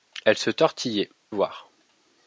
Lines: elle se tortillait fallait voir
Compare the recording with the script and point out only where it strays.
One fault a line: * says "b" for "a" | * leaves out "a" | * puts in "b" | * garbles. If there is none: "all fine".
* leaves out "fallait"